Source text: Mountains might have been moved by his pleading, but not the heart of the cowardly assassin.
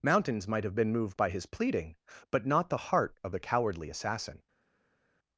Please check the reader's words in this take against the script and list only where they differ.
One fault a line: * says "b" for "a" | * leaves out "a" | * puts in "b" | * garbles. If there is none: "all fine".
all fine